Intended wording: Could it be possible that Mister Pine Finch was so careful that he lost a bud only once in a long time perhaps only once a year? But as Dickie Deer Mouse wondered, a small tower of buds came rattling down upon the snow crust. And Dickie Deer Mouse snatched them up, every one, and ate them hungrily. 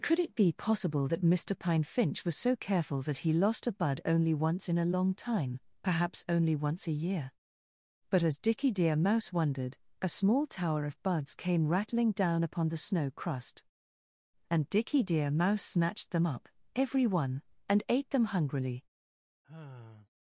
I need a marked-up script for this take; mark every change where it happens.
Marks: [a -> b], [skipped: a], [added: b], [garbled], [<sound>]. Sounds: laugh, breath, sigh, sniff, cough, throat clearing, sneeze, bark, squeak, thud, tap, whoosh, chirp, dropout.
Could it be possible that Mister Pine Finch was so careful that he lost a bud only once in a long time perhaps only once a year? But as Dickie Deer Mouse wondered, a small tower of buds came rattling down upon the snow crust. And Dickie Deer Mouse snatched them up, every one, and ate them hungrily. [sigh]